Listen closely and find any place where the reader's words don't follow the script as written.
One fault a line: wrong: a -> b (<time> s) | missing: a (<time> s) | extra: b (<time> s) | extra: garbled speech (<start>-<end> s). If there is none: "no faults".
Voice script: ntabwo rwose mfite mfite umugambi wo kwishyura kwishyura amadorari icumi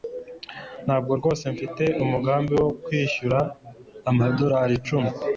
missing: mfite (1.8 s)
missing: kwishyura (3.4 s)